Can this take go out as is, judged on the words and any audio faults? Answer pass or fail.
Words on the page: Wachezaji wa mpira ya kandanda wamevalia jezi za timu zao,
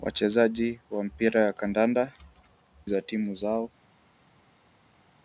fail